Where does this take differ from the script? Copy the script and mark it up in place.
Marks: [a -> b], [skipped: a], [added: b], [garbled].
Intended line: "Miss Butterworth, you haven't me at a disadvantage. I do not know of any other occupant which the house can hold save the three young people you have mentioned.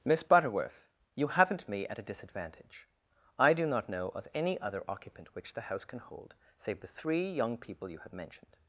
"Miss Butterworth, you haven't me at a disadvantage. I do not know of any other occupant which the house can hold save the three young people you have mentioned.